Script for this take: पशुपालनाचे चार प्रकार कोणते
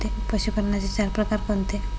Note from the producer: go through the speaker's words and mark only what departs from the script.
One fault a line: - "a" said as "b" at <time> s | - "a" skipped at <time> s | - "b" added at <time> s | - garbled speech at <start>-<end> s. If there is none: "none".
none